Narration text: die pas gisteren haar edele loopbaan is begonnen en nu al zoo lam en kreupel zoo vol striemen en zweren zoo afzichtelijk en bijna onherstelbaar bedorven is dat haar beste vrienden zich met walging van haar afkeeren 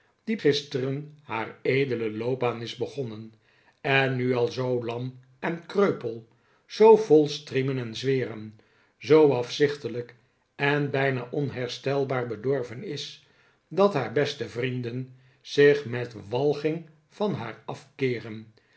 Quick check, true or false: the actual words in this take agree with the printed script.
false